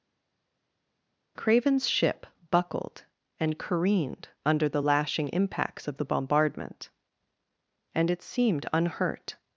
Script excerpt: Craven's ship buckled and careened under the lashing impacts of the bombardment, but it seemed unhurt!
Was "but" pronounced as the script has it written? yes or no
no